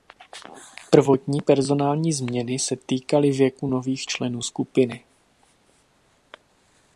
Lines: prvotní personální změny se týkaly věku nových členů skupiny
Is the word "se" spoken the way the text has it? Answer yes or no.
yes